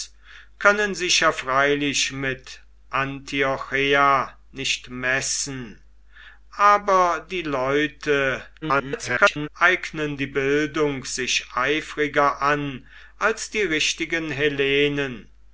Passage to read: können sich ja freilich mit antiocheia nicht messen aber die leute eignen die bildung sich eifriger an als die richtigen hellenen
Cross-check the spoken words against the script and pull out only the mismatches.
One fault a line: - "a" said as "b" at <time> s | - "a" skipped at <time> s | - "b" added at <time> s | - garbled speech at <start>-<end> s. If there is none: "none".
- garbled speech at 8.6-9.5 s